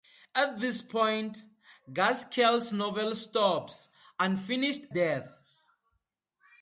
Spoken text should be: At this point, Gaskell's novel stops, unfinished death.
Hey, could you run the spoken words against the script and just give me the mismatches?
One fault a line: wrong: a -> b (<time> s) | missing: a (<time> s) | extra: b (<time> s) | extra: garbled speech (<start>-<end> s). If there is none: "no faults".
no faults